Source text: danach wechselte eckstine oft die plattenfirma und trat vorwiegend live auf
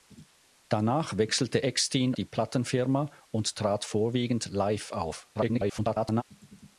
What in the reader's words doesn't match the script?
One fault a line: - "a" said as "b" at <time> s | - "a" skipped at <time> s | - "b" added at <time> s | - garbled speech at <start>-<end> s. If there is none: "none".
- "oft" skipped at 2.2 s
- garbled speech at 5.3-6.2 s